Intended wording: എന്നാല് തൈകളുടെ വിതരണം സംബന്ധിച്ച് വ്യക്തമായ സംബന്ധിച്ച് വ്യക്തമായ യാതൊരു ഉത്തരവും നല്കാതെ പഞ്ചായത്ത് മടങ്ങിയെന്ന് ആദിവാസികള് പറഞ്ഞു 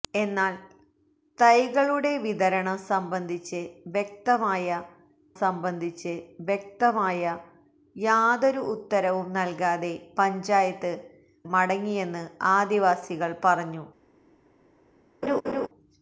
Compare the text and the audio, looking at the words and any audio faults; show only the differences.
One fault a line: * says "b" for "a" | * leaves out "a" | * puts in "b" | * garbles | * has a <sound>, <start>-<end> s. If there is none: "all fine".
* has a laugh, 15.2-15.7 s